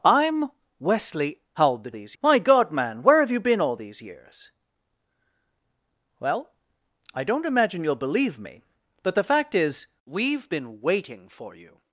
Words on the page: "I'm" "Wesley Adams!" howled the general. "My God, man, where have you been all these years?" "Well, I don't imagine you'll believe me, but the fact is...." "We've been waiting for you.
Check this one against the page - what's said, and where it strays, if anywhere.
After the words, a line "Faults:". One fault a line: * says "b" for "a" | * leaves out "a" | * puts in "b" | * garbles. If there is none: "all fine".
"I'm" "Wesley!" Howled the these. "My God, man, where have you been all these years?" "Well, I don't imagine you'll believe me, but the fact is...." "We've been waiting for you.
Faults:
* leaves out "Adams"
* says "these" for "general"